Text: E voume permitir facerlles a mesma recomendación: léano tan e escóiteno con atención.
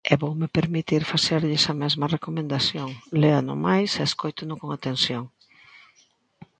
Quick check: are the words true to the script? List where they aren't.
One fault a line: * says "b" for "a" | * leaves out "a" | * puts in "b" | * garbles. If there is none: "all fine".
* says "máis" for "tan"